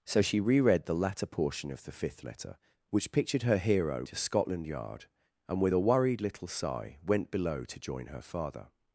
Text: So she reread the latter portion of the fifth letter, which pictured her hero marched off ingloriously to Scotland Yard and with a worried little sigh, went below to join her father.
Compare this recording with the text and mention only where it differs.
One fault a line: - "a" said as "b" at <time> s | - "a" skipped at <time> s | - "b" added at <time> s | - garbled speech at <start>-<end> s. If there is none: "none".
- "marched off ingloriously" skipped at 4.0 s